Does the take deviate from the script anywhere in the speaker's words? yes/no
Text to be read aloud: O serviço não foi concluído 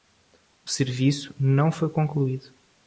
no